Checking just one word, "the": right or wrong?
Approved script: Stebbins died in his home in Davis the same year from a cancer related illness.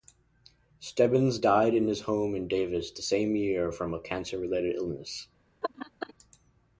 right